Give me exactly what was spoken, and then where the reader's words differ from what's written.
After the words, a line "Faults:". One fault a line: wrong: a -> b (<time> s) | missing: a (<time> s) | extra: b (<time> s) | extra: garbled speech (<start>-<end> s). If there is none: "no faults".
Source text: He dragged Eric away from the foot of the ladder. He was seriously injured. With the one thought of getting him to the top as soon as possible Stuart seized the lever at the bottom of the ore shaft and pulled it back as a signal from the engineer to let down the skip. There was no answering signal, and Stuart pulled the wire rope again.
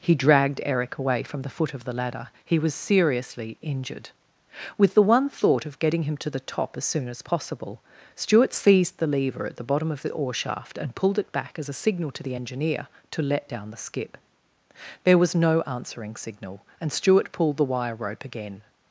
He dragged Eric away from the foot of the ladder. He was seriously injured. With the one thought of getting him to the top as soon as possible Stuart seized the lever at the bottom of the ore shaft and pulled it back as a signal to the engineer to let down the skip. There was no answering signal, and Stuart pulled the wire rope again.
Faults:
wrong: from -> to (12.1 s)